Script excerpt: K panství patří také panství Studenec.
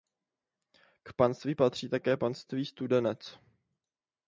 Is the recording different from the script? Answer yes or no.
no